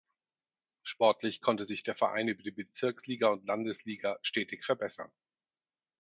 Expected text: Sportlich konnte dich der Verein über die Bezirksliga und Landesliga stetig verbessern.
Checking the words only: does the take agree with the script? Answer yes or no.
no